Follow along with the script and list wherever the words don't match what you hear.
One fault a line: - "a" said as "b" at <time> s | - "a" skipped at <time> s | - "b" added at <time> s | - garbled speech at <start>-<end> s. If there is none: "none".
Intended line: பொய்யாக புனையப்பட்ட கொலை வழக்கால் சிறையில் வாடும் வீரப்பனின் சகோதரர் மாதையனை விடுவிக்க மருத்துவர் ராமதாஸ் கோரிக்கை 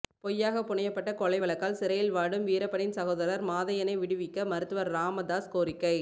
none